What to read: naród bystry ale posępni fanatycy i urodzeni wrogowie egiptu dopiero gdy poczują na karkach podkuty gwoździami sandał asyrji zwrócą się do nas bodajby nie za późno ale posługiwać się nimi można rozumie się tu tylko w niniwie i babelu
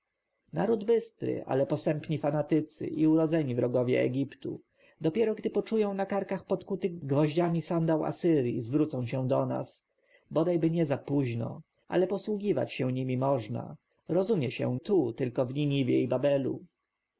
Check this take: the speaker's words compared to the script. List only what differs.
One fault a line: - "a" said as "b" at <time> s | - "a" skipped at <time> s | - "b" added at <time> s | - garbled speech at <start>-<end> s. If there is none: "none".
none